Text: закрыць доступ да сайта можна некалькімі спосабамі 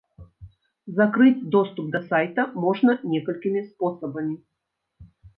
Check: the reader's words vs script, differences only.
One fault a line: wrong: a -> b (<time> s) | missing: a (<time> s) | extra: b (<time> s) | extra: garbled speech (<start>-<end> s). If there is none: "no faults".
no faults